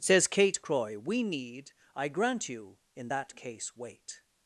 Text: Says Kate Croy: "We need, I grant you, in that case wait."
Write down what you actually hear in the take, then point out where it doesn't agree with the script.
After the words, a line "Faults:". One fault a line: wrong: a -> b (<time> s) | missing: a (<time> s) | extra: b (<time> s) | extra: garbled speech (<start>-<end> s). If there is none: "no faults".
Says Kate Croy: "We need, I grant you, in that case wait."
Faults:
no faults